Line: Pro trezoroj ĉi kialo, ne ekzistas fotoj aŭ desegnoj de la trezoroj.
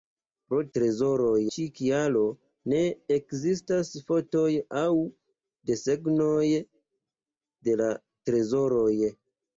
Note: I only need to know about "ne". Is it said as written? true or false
true